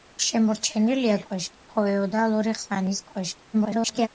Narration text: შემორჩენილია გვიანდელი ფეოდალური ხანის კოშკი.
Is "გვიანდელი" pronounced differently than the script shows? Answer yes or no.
yes